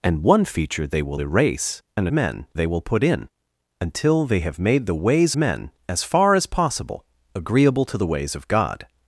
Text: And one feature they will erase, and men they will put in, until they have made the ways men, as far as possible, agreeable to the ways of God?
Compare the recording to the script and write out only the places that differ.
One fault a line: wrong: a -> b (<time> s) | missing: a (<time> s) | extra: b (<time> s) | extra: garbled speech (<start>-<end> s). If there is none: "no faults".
no faults